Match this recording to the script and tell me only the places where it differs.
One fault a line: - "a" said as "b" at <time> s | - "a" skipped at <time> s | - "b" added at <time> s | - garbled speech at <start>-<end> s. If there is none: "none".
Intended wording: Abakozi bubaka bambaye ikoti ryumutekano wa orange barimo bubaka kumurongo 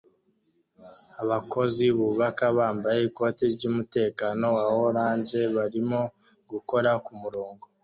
- "bubaka" said as "gukora" at 6.5 s